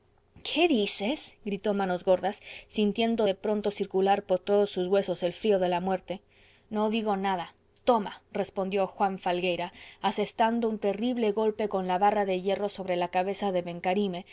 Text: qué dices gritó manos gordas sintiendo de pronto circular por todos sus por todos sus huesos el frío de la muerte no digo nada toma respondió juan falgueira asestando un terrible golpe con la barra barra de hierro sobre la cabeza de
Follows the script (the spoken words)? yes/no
no